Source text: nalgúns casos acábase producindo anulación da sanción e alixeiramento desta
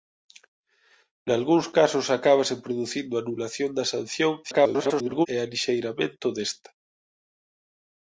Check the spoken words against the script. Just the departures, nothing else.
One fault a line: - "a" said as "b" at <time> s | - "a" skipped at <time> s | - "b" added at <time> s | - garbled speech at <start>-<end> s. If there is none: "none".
- garbled speech at 4.4-5.3 s